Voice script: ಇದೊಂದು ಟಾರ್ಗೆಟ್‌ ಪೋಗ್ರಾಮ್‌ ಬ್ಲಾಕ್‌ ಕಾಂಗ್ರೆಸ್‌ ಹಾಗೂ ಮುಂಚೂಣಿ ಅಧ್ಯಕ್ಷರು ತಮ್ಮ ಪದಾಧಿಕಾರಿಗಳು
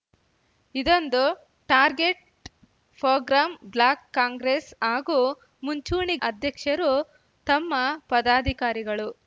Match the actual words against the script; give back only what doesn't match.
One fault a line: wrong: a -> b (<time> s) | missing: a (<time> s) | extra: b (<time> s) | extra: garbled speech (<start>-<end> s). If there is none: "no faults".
no faults